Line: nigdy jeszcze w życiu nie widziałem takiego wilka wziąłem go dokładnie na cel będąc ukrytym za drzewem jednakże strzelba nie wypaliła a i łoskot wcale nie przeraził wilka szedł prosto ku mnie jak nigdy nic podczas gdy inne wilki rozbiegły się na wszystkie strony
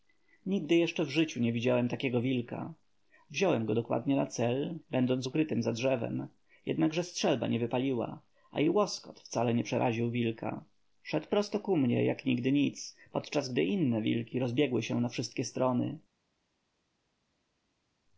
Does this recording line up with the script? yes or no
yes